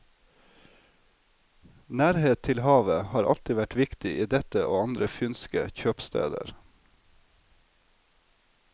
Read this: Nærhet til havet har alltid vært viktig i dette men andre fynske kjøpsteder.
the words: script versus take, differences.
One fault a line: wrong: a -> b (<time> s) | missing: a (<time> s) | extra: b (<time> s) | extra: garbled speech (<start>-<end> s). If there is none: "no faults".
wrong: men -> og (4.6 s)